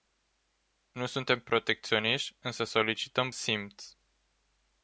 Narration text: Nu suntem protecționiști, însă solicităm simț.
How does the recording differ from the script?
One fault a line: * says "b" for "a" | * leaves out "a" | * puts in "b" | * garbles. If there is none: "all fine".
all fine